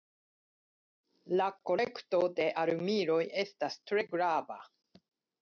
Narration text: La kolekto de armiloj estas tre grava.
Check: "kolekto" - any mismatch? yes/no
no